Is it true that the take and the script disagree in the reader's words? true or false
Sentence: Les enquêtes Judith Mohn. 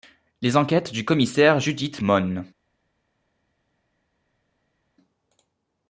true